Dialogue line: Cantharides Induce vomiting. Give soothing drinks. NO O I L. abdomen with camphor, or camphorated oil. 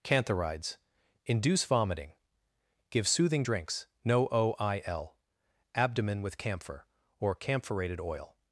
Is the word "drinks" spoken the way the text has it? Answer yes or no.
yes